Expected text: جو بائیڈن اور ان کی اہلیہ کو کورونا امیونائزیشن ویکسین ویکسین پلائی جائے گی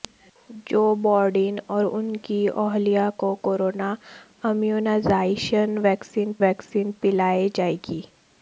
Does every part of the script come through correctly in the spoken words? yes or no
yes